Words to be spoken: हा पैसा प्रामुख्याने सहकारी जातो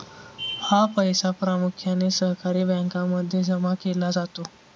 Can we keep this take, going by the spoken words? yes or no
no